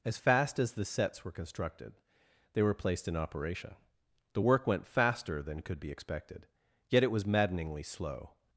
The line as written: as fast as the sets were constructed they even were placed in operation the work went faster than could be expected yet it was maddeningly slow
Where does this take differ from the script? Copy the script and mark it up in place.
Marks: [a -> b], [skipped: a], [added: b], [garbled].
as fast as the sets were constructed they [skipped: even] were placed in operation the work went faster than could be expected yet it was maddeningly slow